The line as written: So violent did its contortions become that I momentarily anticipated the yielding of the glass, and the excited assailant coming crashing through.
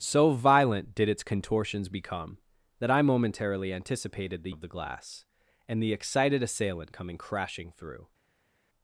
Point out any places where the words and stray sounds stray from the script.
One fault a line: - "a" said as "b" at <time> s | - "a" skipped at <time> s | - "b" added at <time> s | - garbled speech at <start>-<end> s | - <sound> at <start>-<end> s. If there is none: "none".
- "yielding" skipped at 4.5 s